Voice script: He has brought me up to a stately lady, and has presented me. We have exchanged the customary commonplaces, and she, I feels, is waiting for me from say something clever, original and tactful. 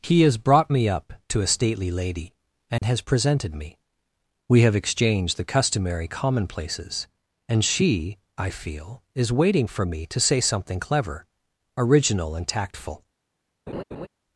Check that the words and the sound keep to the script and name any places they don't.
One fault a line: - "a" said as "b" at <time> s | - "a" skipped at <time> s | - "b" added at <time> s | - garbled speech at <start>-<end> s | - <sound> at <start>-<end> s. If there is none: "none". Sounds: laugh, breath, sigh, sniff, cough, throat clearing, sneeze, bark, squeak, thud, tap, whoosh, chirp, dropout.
- dropout at 2.8-2.8 s
- "feels" said as "feel" at 8.5 s
- "from" said as "to" at 10.1 s
- laugh at 13.7-14.1 s